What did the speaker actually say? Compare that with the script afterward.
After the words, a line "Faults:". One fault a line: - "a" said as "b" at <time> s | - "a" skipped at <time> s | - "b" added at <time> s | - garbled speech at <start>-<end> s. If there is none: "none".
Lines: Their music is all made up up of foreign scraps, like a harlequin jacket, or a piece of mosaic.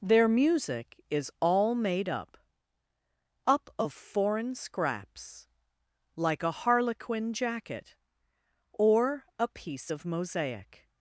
Their music is all made up up of foreign scraps, like a harlequin jacket, or a piece of mosaic.
Faults:
none